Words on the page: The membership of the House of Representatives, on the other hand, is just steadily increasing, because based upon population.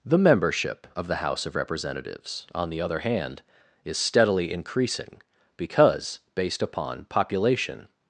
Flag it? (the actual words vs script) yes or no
yes